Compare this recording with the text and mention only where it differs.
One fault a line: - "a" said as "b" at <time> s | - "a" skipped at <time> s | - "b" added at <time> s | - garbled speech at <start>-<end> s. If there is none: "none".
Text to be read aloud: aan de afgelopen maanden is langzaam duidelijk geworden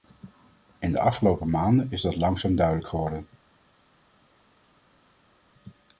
- "aan" said as "in" at 0.8 s
- "dat" added at 2.0 s